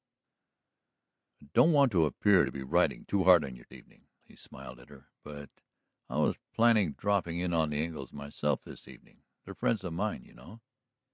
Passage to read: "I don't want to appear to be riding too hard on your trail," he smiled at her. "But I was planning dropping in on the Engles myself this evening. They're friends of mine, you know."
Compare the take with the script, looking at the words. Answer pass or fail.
fail